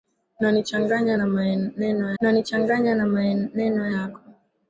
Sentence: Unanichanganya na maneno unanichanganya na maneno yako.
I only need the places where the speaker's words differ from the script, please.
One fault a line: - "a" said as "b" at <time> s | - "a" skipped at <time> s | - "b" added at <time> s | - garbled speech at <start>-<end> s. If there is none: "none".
none